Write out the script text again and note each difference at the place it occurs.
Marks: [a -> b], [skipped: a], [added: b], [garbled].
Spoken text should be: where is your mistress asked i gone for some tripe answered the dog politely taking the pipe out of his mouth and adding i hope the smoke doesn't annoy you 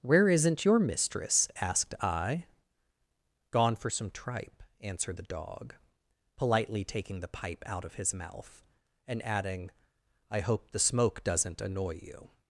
where [is -> isn't] your mistress asked i gone for some tripe answered the dog politely taking the pipe out of his mouth and adding i hope the smoke doesn't annoy you